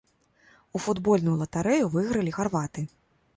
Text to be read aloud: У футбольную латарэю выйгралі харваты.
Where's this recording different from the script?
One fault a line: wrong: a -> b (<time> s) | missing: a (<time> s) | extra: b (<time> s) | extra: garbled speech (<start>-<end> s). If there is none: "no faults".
no faults